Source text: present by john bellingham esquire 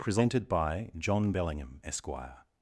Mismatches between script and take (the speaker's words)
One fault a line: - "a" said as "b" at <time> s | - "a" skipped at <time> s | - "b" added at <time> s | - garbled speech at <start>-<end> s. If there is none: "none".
- "present" said as "presented" at 0.0 s